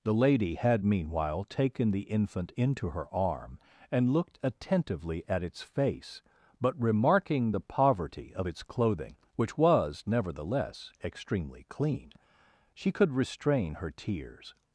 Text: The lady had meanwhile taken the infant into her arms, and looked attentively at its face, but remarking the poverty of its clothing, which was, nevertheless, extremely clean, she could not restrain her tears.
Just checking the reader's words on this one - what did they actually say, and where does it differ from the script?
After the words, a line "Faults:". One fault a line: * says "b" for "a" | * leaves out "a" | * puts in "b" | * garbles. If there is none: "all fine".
The lady had meanwhile taken the infant into her arm, and looked attentively at its face, but remarking the poverty of its clothing, which was, nevertheless, extremely clean, she could restrain her tears.
Faults:
* says "arm" for "arms"
* leaves out "not"